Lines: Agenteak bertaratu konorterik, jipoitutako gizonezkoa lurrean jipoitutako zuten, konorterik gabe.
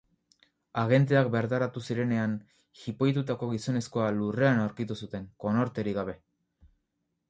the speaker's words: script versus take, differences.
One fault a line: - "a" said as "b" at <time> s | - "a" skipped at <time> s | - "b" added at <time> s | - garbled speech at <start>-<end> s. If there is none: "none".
- "konorterik" said as "zirenean" at 1.9 s
- "jipoitutako" said as "aurkitu" at 4.7 s